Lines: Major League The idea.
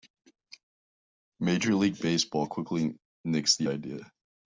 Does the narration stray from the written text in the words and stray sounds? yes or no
yes